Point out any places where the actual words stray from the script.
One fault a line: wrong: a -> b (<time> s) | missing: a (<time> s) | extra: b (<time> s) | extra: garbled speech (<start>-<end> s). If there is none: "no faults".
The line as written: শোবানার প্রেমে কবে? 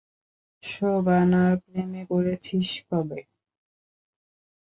extra: পড়েছিস (2.1 s)